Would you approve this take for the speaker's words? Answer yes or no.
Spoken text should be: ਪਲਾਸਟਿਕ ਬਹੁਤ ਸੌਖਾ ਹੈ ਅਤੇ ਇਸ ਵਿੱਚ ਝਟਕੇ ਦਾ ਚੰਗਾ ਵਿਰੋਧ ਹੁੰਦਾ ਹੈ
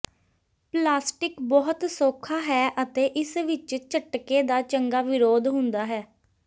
yes